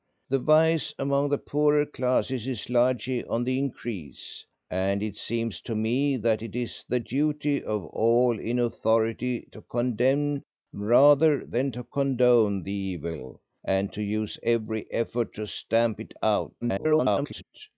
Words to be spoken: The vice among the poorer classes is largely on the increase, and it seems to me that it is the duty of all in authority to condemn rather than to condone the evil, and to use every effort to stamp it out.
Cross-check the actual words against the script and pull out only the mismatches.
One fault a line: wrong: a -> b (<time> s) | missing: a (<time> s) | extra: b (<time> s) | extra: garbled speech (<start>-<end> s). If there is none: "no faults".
extra: garbled speech (16.6-17.4 s)